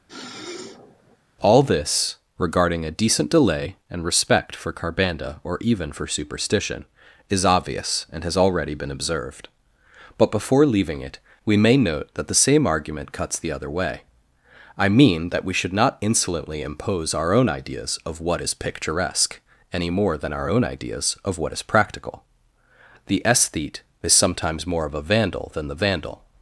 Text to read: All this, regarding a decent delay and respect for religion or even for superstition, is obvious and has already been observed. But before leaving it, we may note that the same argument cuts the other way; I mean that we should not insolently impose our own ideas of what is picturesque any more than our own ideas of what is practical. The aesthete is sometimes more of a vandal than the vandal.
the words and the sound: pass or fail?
fail